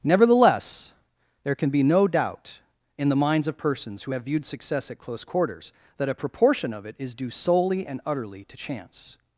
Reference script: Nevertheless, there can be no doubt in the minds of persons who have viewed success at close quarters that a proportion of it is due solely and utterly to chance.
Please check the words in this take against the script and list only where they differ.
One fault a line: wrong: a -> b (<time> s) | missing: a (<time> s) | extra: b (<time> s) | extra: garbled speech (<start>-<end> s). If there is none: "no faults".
no faults